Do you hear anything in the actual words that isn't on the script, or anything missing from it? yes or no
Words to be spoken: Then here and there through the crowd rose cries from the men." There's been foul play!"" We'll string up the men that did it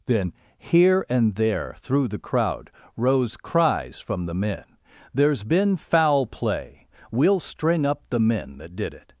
no